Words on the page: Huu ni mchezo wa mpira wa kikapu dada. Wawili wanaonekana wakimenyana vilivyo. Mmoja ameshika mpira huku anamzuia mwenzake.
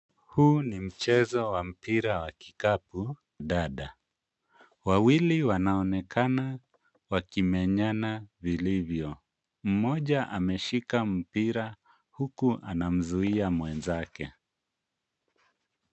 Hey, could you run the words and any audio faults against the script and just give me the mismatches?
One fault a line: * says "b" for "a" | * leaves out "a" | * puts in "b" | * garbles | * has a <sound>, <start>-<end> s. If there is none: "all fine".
all fine